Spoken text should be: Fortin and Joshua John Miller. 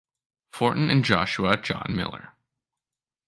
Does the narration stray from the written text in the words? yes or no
no